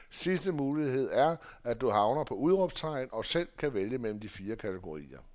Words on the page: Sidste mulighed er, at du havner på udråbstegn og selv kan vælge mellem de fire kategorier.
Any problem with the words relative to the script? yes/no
no